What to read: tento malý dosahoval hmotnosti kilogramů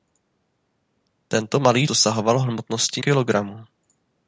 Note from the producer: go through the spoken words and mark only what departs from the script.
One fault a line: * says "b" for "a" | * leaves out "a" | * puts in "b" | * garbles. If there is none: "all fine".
all fine